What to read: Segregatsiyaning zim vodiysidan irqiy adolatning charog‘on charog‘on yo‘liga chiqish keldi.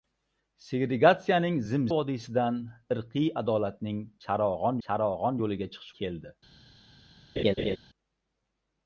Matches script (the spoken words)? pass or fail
pass